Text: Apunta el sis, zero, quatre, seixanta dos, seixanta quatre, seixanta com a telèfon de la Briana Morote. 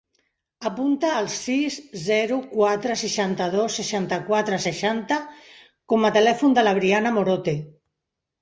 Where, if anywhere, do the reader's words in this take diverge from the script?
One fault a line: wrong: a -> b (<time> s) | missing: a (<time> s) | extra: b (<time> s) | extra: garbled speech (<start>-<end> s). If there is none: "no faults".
no faults